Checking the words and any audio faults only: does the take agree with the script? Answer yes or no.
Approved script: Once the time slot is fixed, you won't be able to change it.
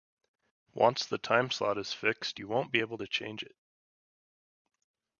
yes